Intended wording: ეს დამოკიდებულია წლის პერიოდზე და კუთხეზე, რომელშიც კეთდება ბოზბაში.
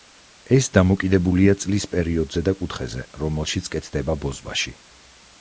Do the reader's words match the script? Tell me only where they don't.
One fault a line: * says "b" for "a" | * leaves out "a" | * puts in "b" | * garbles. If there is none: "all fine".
all fine